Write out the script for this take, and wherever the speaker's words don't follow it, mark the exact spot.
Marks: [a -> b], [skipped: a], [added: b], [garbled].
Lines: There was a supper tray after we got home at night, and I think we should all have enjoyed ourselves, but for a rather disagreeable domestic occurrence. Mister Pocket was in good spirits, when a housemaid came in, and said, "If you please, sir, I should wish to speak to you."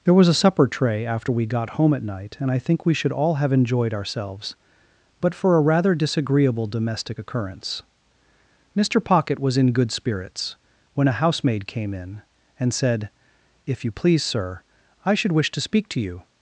There was a supper tray after we got home at night, and I think we should all have enjoyed ourselves, but for a rather disagreeable domestic occurrence. Mister Pocket was in good spirits, when a housemaid came in, and said, "If you please, sir, I should wish to speak to you."